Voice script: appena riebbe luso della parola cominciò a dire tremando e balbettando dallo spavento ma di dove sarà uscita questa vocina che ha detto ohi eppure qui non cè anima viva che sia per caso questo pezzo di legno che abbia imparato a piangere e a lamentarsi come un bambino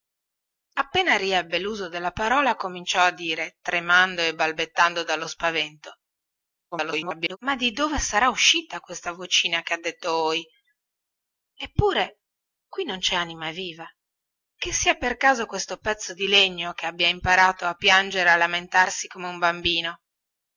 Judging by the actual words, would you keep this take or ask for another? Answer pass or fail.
fail